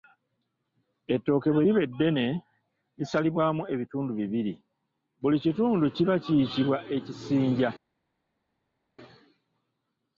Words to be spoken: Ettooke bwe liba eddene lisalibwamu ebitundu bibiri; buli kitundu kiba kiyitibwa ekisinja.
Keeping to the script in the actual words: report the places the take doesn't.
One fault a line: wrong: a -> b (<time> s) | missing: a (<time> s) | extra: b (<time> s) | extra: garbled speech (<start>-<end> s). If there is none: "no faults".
no faults